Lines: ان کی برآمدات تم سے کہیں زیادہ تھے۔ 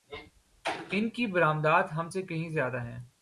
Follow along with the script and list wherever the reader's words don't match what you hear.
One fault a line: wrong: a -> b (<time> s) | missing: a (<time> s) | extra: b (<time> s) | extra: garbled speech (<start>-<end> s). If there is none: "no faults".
wrong: تم -> ہم (1.9 s)
wrong: تھے -> ہیں (2.8 s)